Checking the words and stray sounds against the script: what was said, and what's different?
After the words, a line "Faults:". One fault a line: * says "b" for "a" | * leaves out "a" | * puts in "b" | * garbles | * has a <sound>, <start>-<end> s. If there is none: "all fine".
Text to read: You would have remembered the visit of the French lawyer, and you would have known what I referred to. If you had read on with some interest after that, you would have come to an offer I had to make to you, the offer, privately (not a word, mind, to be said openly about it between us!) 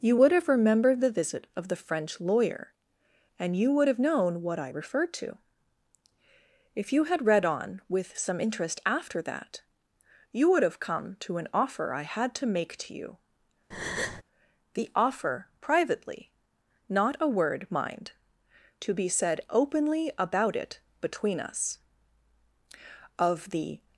You would have remembered the visit of the French lawyer, and you would have known what I referred to. If you had read on with some interest after that, you would have come to an offer I had to make to you, the offer, privately (not a word, mind, to be said openly about it between us!) of the
Faults:
* has a breath, 13.7-14.2 s
* puts in "of the"